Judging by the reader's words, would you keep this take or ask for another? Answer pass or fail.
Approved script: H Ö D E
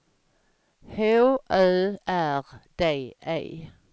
fail